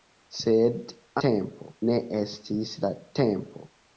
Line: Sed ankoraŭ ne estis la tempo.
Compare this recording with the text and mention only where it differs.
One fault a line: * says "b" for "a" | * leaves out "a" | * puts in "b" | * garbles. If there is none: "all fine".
* says "tempo" for "ankoraŭ"